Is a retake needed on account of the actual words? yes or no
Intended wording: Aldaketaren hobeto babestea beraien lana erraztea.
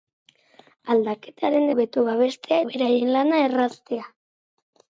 no